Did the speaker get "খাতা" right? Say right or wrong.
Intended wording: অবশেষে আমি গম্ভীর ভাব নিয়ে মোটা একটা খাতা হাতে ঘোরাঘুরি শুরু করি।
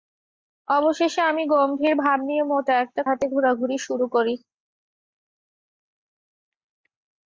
wrong